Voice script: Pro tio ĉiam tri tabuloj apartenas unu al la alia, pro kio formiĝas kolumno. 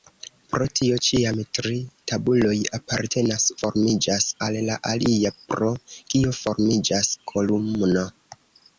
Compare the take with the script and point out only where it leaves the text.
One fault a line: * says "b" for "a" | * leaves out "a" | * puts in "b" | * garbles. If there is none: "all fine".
* says "formiĝas" for "unu"